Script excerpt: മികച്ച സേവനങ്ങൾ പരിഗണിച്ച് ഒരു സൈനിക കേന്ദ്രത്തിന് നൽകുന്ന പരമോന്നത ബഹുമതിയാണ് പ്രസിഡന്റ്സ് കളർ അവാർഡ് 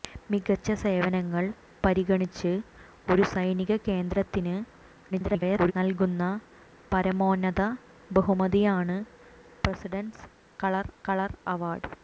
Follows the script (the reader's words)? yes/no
no